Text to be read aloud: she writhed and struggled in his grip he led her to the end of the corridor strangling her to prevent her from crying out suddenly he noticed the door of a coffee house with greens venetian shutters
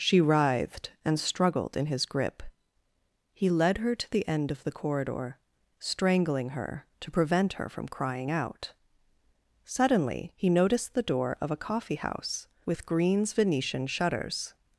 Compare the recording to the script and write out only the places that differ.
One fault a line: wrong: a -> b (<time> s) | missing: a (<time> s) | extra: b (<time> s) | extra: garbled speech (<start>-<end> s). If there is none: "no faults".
no faults